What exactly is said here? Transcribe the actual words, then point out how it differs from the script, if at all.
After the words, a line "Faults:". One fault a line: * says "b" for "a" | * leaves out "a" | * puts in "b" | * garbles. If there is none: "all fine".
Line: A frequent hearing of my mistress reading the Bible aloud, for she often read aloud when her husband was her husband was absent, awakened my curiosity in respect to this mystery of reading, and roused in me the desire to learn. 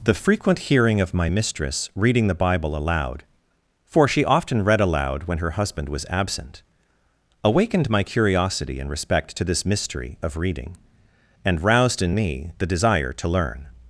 The frequent hearing of my mistress reading the Bible aloud, for she often read aloud when her husband was absent, awakened my curiosity in respect to this mystery of reading, and roused in me the desire to learn.
Faults:
* says "The" for "A"
* leaves out "her husband was"